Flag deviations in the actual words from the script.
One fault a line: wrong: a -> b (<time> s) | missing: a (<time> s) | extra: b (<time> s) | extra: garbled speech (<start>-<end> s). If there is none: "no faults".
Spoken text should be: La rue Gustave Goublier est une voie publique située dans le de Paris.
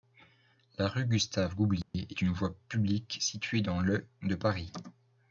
no faults